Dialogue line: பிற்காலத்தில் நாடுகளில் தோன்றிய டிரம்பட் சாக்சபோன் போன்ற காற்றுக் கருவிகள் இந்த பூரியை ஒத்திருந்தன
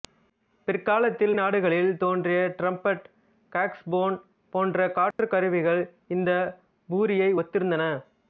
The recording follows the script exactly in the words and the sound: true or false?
false